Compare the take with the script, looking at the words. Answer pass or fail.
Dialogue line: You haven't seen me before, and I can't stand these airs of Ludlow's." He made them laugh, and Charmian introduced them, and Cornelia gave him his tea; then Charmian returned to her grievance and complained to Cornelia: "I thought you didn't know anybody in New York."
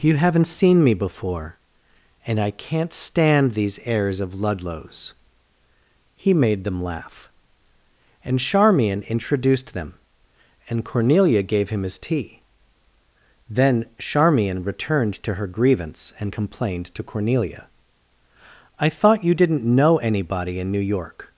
pass